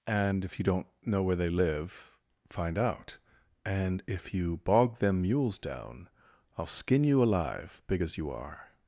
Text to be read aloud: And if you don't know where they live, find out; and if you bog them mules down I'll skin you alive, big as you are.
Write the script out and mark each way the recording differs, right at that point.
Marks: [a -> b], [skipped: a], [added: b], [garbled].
And if you don't know where they live, find out; and if you bog them mules down I'll skin you alive, big as you are.